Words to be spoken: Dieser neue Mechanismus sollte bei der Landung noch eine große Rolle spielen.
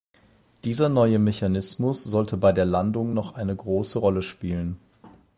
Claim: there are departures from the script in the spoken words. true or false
false